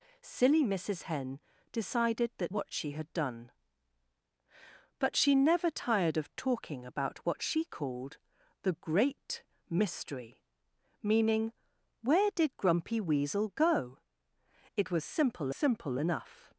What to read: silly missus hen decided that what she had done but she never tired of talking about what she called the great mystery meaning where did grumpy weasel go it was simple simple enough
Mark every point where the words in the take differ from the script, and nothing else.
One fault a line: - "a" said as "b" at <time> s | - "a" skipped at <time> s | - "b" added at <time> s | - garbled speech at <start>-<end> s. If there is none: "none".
none